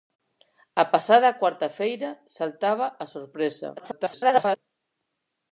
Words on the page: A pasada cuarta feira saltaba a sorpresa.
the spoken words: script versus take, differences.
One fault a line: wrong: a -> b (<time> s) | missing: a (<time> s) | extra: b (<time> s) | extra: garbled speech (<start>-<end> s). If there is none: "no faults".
extra: garbled speech (3.8-4.6 s)